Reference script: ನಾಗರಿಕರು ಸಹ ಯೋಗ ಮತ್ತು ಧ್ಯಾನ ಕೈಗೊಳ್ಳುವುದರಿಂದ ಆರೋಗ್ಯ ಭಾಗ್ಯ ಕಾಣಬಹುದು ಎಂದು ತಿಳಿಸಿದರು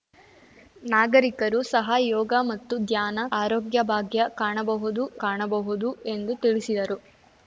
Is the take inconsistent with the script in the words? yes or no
yes